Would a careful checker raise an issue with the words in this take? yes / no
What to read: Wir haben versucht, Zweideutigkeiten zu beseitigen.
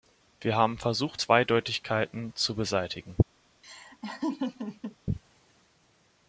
no